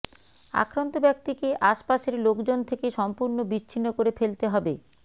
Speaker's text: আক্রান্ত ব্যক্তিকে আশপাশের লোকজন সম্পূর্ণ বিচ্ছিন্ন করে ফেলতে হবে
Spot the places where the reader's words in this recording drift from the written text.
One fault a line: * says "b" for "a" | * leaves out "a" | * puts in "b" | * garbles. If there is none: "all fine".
* puts in "থেকে"